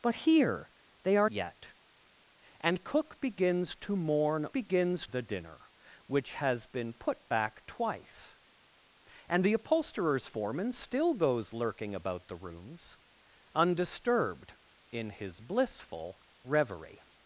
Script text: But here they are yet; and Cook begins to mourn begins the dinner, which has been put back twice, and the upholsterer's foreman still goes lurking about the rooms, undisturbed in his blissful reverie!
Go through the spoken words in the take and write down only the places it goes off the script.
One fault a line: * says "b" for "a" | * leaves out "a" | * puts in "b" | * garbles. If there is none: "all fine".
all fine